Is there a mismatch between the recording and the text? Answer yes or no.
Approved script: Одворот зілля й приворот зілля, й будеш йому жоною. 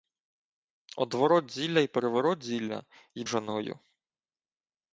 yes